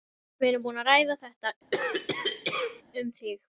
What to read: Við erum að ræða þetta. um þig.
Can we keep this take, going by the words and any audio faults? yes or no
no